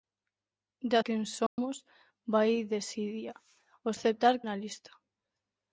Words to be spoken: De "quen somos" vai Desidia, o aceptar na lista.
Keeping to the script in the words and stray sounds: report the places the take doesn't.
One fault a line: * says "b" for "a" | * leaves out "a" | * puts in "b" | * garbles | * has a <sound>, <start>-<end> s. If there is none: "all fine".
* has a dropout, 1.5-1.6 s